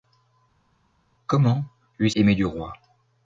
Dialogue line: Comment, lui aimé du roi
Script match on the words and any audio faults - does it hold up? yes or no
yes